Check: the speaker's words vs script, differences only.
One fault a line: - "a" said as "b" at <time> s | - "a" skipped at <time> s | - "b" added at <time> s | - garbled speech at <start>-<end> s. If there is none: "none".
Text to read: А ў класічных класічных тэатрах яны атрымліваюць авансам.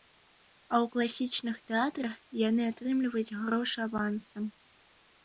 - "класічных" skipped at 1.6 s
- "грошы" added at 3.4 s